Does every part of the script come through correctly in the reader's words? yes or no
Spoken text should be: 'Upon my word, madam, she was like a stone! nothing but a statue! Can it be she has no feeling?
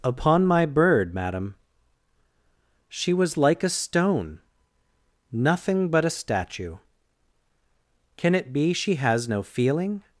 no